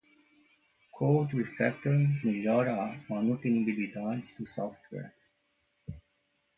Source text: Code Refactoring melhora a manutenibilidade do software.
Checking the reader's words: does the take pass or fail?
pass